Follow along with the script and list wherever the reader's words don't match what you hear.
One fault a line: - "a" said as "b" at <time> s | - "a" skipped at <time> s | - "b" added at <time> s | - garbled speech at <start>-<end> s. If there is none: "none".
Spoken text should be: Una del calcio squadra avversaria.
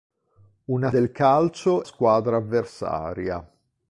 none